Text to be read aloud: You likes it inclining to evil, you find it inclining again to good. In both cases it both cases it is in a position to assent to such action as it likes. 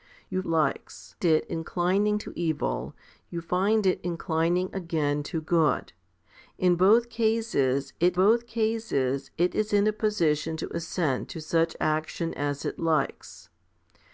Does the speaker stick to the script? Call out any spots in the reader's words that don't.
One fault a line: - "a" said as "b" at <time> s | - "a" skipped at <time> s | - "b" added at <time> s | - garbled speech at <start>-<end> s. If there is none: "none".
none